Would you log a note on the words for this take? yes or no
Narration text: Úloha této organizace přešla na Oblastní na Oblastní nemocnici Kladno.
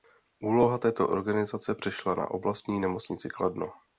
yes